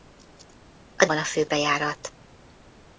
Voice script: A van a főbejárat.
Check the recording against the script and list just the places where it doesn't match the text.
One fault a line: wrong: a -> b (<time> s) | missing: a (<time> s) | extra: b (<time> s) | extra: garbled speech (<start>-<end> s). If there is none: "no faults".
no faults